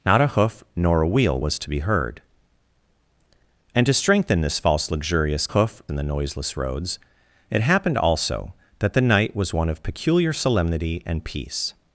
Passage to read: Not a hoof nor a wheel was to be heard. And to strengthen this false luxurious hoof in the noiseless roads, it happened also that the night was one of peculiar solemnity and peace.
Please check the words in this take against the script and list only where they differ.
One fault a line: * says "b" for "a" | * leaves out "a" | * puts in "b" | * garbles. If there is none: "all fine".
all fine